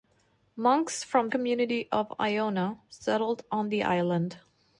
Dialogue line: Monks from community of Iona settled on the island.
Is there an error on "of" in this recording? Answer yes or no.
no